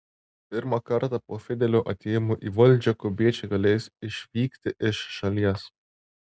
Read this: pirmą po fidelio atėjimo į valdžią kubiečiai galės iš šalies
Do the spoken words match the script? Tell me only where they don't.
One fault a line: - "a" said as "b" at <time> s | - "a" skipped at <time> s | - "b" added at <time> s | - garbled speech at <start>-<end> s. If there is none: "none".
- "kartą" added at 0.9 s
- "išvykti" added at 4.1 s